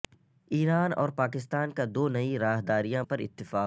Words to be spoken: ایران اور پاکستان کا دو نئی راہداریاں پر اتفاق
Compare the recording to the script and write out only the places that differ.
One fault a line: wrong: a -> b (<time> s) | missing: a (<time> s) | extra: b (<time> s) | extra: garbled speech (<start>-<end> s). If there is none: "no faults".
no faults